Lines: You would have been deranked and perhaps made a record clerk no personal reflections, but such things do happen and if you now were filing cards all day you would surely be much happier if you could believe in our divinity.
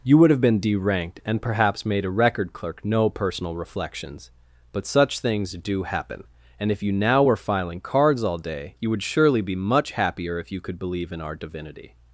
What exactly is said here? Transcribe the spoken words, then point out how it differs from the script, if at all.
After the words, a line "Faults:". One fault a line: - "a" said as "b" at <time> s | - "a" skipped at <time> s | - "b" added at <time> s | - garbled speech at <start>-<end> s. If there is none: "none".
You would have been deranked and perhaps made a record clerk no personal reflections, but such things do happen and if you now were filing cards all day you would surely be much happier if you could believe in our divinity.
Faults:
none